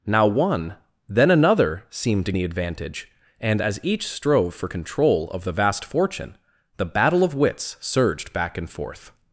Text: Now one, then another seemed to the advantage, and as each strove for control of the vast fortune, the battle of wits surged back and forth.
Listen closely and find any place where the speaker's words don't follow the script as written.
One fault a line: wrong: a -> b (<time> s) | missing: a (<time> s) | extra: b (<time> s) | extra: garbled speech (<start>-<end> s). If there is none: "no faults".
no faults